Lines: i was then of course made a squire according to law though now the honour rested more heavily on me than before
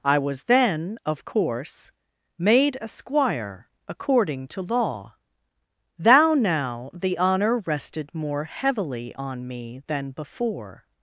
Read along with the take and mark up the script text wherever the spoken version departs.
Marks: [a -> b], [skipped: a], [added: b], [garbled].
i was then of course made a squire according to law [though -> thou] now the honour rested more heavily on me than before